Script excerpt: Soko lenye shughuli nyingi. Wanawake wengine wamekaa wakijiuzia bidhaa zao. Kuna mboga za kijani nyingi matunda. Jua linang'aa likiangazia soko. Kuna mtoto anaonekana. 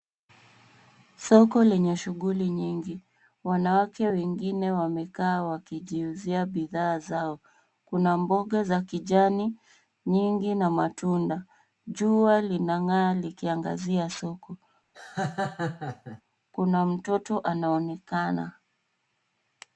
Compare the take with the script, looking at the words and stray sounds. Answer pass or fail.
fail